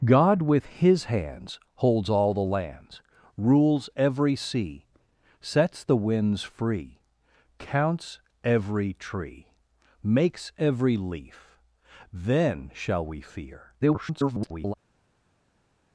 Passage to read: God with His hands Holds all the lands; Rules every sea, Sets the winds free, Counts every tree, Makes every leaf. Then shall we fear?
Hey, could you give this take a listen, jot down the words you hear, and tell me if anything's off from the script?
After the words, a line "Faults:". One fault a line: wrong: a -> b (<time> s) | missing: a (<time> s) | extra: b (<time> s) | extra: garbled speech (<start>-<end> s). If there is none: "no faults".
God with His hands Holds all the lands; Rules every sea, Sets the winds free, Counts every tree, Makes every leaf. Then shall we fear? [garbled]
Faults:
extra: garbled speech (13.8-14.7 s)